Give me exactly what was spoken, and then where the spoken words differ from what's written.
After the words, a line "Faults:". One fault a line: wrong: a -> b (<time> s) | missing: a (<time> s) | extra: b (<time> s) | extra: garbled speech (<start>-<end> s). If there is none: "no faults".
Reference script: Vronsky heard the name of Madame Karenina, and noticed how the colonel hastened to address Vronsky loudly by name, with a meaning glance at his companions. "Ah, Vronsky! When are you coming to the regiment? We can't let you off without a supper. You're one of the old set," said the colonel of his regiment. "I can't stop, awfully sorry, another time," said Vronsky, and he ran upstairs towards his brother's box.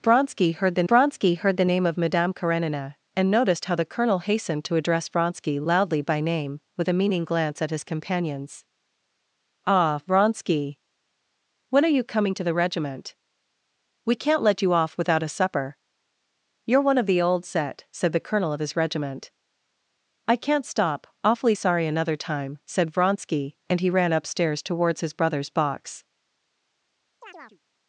Vronsky heard the vronsky heard the name of Madame Karenina, and noticed how the colonel hastened to address Vronsky loudly by name, with a meaning glance at his companions. "Ah, Vronsky! When are you coming to the regiment? We can't let you off without a supper. You're one of the old set," said the colonel of his regiment. "I can't stop, awfully sorry, another time," said Vronsky, and he ran upstairs towards his brother's box.
Faults:
extra: vronsky heard the (0.9 s)